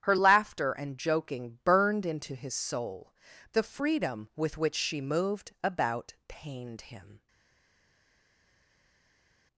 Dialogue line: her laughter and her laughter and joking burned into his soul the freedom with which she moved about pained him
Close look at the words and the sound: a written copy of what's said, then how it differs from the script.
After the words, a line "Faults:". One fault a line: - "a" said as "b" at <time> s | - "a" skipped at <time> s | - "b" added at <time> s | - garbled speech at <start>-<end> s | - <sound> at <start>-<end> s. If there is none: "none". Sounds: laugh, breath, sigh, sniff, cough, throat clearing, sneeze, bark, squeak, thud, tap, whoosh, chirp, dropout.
her laughter and joking burned into his soul the freedom with which she moved about pained him
Faults:
- "her laughter and" skipped at 1.0 s